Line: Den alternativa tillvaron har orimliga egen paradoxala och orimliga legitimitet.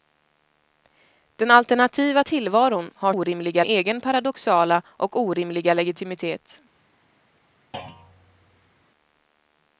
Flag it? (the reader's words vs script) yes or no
no